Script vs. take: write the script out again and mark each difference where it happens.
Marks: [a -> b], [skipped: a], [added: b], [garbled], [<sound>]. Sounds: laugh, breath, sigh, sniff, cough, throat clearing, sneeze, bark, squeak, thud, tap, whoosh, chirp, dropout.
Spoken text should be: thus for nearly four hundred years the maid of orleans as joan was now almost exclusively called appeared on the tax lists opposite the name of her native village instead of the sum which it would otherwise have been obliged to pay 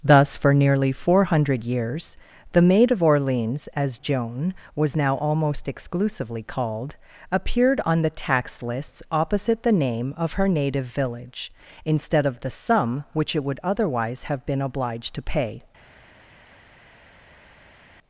thus for nearly four hundred years the maid of orleans as joan was now almost exclusively called appeared on the tax lists opposite the name of her native village instead of the sum which it would otherwise have been obliged to pay